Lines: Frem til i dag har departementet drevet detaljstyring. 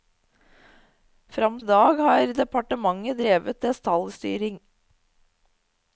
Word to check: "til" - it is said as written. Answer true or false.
false